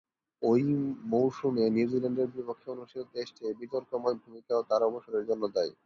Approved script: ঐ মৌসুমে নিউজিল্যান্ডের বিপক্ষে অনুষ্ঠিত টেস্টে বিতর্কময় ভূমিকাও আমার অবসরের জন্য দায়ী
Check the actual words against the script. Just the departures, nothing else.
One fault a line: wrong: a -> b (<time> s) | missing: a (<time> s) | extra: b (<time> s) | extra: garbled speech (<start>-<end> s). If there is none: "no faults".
wrong: আমার -> তার (4.7 s)